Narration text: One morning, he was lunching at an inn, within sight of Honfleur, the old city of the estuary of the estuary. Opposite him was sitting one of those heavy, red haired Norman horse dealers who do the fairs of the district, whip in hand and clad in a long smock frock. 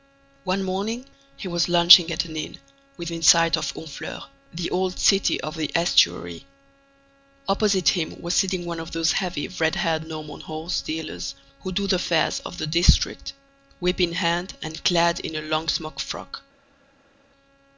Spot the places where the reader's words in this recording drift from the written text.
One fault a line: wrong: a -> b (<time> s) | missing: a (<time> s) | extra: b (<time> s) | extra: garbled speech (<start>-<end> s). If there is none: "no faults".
missing: of the estuary (6.4 s)